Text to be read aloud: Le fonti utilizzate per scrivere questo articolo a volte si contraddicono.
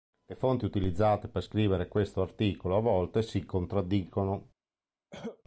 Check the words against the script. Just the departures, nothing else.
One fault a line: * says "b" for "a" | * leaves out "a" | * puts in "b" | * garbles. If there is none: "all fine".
all fine